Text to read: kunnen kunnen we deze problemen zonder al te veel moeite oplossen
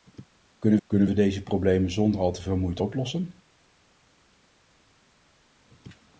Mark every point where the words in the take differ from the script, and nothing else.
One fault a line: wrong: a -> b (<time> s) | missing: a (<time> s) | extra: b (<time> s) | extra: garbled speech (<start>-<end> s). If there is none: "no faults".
no faults